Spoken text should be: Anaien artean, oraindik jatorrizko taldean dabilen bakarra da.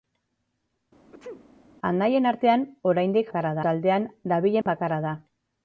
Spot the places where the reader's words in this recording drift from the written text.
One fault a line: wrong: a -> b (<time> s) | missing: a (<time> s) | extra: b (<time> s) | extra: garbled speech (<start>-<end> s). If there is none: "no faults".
wrong: jatorrizko -> bakarra (3.3 s)